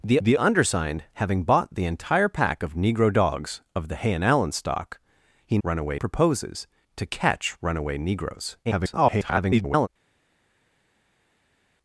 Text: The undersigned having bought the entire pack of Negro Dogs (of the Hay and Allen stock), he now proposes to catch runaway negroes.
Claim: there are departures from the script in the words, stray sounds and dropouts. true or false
true